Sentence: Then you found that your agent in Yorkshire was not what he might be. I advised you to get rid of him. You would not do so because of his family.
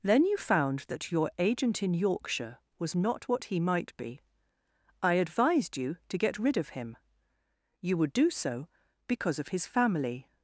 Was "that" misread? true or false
false